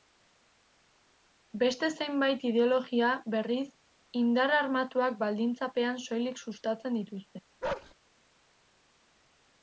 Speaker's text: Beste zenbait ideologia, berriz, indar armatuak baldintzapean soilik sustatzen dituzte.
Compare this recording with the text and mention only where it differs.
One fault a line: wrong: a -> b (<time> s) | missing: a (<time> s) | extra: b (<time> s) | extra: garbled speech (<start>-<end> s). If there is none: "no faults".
no faults